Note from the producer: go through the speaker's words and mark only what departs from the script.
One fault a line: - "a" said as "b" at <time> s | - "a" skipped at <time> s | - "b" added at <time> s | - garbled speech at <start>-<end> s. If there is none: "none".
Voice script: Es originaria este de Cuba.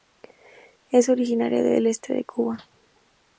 - "del" added at 1.6 s